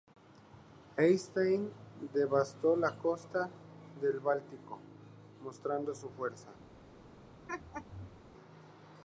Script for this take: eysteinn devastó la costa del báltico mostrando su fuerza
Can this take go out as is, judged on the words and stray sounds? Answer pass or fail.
fail